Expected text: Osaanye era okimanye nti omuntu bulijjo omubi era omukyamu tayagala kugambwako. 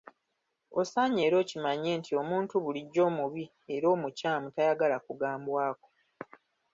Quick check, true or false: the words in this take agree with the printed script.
true